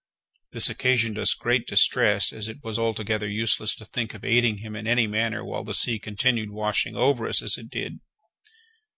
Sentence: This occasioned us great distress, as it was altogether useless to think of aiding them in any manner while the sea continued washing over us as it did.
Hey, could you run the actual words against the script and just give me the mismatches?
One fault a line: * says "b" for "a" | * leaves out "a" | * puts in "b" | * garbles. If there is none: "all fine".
* says "him" for "them"